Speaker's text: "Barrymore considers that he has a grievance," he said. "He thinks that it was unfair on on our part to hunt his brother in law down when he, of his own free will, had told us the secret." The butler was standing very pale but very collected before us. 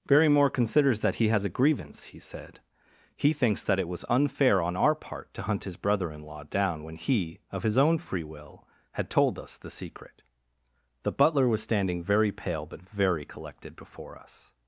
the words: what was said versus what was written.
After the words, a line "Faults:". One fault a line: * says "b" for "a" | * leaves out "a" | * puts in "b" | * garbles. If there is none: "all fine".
"Barrymore considers that he has a grievance," he said. "He thinks that it was unfair on our part to hunt his brother in law down when he, of his own free will, had told us the secret." The butler was standing very pale but very collected before us.
Faults:
* leaves out "on"